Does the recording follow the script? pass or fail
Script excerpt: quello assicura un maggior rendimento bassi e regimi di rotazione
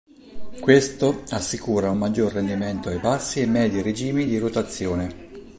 fail